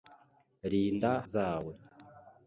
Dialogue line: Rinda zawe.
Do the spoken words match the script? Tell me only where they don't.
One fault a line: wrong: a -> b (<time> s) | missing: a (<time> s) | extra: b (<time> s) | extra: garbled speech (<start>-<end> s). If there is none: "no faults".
no faults